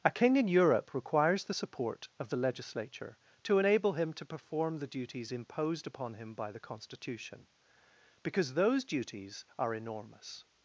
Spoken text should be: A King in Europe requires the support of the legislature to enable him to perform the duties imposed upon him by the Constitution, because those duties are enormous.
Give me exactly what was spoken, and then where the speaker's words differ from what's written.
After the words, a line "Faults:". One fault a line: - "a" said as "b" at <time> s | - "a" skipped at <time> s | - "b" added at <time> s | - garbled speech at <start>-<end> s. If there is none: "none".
A King in Europe requires the support of the legislature to enable him to perform the duties imposed upon him by the Constitution, because those duties are enormous.
Faults:
none